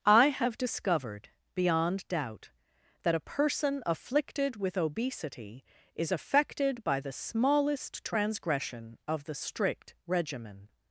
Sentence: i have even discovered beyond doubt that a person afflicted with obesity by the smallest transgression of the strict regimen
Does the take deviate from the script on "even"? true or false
true